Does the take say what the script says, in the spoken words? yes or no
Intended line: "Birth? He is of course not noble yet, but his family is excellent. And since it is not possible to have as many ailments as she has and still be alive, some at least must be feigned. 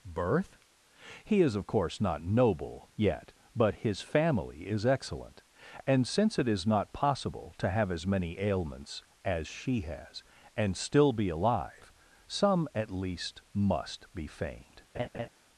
yes